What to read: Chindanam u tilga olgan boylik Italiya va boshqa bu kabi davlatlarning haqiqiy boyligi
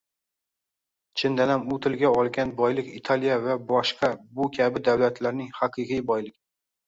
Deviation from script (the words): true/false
false